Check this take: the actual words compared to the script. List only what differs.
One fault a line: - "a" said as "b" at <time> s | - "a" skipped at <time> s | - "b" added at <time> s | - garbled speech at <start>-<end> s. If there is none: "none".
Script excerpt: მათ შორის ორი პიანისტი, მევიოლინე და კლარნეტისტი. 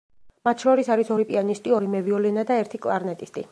- "არის" added at 0.9 s
- "ორი" added at 1.8 s
- "ერთი" added at 2.6 s